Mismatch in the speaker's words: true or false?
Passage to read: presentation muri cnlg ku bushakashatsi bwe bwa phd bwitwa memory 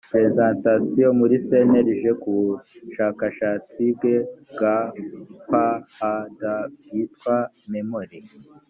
false